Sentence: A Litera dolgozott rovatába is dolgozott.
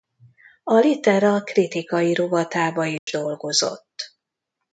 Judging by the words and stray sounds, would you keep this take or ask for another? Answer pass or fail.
fail